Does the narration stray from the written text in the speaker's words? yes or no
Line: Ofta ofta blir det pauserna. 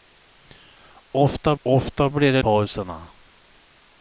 no